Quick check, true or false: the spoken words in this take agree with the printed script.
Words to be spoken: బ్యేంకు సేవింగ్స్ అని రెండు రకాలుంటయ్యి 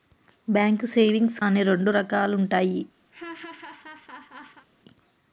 true